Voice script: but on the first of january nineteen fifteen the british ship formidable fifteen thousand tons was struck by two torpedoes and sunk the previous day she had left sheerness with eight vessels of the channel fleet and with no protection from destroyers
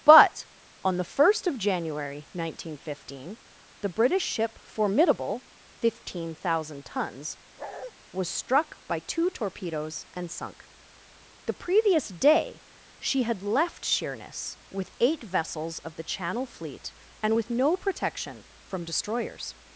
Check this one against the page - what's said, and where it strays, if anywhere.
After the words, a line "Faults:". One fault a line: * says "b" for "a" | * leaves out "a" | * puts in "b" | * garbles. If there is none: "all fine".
but on the first of january nineteen fifteen the british ship formidable fifteen thousand tons was struck by two torpedoes and sunk the previous day she had left sheerness with eight vessels of the channel fleet and with no protection from destroyers
Faults:
all fine